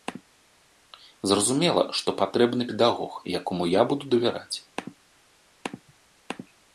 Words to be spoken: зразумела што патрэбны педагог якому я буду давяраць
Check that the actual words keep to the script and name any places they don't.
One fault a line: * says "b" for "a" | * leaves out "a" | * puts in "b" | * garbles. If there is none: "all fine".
all fine